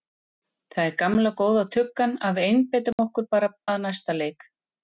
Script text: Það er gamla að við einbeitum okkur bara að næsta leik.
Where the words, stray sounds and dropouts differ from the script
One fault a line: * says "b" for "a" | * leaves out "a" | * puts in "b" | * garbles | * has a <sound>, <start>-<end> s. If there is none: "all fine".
* puts in "góða tuggan"
* has a dropout, 2.9-3.0 s